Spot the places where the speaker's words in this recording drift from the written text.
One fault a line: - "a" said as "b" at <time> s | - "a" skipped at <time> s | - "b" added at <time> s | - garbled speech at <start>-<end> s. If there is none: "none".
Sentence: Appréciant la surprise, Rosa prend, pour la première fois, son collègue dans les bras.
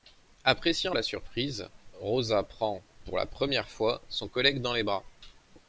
none